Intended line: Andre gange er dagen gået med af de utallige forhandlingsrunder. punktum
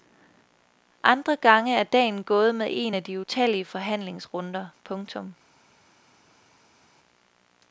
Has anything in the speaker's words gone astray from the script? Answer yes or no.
yes